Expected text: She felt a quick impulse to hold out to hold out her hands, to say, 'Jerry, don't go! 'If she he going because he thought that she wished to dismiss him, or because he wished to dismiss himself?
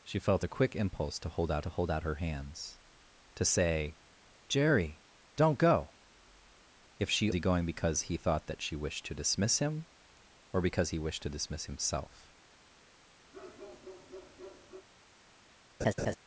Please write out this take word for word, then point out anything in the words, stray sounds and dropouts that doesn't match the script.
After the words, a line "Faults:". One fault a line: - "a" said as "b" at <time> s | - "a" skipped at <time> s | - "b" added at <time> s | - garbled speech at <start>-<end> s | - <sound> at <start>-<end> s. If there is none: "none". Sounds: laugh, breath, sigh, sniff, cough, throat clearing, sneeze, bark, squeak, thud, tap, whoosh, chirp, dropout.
She felt a quick impulse to hold out to hold out her hands, to say, 'Jerry, don't go! 'If she he going because he thought that she wished to dismiss him, or because he wished to dismiss himself?
Faults:
- bark at 13.3-14.9 s
- laugh at 15.8-16.2 s